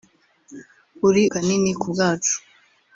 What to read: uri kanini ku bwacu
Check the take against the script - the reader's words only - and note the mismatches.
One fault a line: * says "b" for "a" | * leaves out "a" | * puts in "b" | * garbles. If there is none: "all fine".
all fine